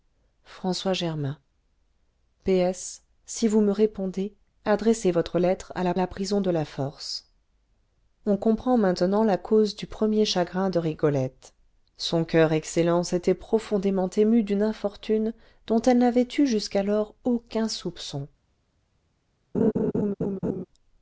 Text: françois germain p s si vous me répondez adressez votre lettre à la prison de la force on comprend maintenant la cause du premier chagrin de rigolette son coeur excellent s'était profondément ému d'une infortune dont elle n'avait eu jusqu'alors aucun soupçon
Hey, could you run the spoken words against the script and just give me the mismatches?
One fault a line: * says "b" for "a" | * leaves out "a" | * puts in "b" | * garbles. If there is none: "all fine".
* puts in "la"